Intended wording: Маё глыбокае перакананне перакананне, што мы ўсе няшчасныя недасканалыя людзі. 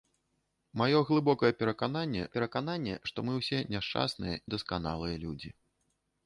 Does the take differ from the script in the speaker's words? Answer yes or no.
no